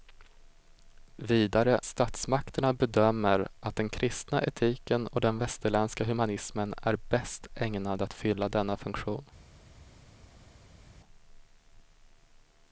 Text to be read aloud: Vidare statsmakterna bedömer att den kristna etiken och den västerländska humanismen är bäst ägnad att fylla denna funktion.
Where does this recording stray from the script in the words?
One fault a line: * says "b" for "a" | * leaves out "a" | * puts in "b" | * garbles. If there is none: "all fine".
all fine